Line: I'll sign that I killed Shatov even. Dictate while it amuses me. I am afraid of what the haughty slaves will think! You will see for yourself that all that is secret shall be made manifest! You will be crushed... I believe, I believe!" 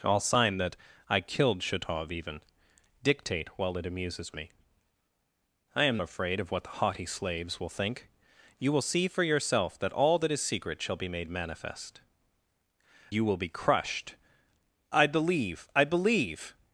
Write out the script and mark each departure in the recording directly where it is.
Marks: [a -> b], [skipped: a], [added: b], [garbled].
I'll sign that I killed Shatov even. Dictate while it amuses me. I am afraid of what the haughty slaves will think! You will see for yourself that all that is secret shall be made manifest! You will be crushed... I believe, I believe!"